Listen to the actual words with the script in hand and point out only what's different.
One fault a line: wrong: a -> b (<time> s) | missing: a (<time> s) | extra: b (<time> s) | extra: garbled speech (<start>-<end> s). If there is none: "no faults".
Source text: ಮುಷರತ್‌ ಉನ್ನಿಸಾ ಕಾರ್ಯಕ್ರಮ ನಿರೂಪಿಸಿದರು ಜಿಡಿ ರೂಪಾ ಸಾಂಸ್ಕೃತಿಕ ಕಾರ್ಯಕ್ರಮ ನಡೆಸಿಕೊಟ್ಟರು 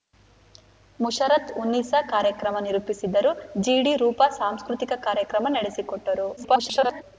extra: garbled speech (6.4-7.0 s)